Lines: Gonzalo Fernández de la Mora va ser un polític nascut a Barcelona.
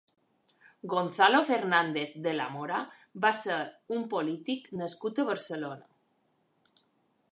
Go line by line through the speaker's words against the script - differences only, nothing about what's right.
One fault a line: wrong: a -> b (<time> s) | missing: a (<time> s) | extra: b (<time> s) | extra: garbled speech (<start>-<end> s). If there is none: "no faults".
no faults